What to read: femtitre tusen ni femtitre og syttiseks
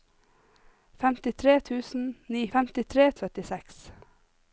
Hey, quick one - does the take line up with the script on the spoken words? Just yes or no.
yes